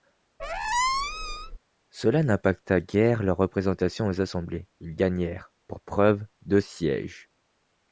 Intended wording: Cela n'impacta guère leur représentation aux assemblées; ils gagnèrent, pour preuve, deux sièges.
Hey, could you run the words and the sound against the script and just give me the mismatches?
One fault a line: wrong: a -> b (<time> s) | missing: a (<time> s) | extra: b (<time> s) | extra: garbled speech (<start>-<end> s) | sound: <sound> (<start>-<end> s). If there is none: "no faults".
sound: squeak (0.4-1.6 s)